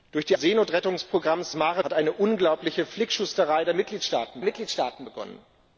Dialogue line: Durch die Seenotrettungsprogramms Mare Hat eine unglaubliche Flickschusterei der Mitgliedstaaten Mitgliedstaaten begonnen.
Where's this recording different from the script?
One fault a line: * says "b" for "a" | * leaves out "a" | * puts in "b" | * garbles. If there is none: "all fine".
all fine